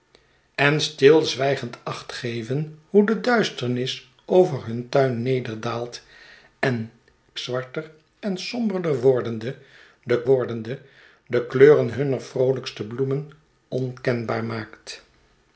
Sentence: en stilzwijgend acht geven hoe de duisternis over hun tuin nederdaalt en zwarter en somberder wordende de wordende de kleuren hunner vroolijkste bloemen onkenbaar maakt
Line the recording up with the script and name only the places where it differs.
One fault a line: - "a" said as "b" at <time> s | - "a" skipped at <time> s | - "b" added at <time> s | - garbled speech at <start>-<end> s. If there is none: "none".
none